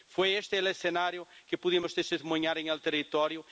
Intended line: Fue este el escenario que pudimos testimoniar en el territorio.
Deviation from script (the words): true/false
false